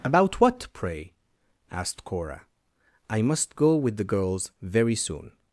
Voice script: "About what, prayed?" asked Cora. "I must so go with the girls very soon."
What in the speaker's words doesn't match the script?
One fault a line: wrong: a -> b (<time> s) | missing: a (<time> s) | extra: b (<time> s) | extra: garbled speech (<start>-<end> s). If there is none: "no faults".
wrong: prayed -> pray (0.7 s)
missing: so (3.5 s)